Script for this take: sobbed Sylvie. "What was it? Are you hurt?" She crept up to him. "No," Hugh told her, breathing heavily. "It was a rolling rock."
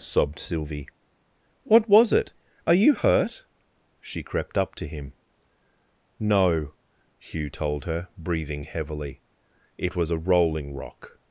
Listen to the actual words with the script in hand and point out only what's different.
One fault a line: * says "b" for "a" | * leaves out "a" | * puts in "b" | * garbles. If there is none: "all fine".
all fine